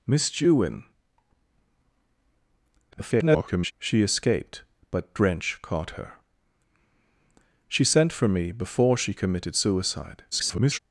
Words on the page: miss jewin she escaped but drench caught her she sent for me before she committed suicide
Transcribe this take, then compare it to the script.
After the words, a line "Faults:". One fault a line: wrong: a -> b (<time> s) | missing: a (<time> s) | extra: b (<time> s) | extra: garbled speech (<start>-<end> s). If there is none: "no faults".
miss jewin [garbled] she escaped but drench caught her she sent for me before she committed suicide [garbled]
Faults:
extra: garbled speech (2.9-3.7 s)
extra: garbled speech (10.3-10.8 s)